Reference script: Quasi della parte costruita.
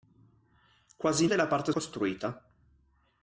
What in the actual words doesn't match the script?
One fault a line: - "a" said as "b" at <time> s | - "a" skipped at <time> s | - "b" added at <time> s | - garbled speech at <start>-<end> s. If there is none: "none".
none